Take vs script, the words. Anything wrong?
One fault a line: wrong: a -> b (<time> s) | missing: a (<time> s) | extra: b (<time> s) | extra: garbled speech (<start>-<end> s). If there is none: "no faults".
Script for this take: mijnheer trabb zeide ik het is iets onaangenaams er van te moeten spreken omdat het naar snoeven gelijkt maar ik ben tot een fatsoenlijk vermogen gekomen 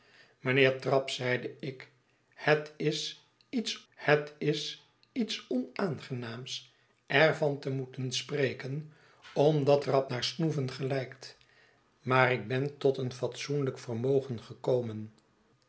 extra: het is iets (3.9 s)
wrong: het -> trabb (9.8 s)